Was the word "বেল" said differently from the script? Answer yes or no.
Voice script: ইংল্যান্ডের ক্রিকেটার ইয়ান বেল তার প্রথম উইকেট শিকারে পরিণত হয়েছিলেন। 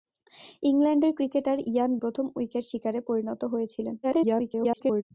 yes